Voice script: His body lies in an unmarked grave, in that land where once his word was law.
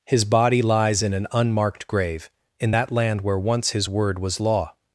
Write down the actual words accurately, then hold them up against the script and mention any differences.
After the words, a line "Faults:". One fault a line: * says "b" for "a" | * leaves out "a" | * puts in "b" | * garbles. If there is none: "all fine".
His body lies in an unmarked grave, in that land where once his word was law.
Faults:
all fine